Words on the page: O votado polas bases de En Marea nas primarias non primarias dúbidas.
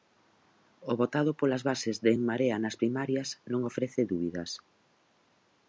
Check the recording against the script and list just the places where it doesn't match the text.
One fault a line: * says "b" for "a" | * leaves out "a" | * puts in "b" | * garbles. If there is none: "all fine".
* says "ofrece" for "primarias"